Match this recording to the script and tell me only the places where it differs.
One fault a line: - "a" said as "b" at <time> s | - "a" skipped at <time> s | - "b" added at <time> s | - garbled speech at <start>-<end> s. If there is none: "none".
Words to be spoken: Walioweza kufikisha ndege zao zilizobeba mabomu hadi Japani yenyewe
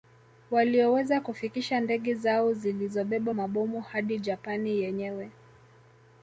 none